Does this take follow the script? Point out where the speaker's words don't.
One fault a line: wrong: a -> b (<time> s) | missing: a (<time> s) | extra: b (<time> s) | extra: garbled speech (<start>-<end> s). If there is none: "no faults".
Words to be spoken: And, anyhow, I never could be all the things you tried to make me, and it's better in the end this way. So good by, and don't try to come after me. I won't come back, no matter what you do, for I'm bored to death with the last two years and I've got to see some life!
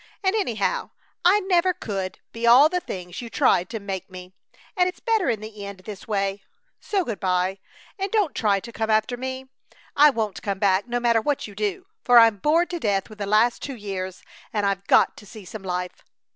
no faults